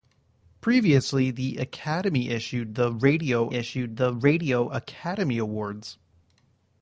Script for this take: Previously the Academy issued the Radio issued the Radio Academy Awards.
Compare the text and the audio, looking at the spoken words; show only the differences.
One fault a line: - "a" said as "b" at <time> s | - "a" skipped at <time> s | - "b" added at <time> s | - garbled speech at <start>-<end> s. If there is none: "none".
none